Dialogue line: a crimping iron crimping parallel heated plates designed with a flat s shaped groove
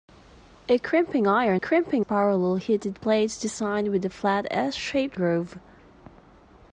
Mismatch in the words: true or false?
false